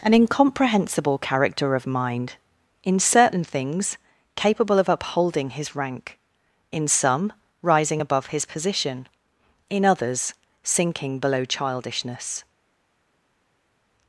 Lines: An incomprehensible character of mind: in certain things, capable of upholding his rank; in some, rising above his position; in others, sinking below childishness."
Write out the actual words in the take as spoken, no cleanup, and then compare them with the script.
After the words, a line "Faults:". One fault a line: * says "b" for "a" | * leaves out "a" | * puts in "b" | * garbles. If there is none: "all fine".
An incomprehensible character of mind: in certain things, capable of upholding his rank; in some, rising above his position; in others, sinking below childishness."
Faults:
all fine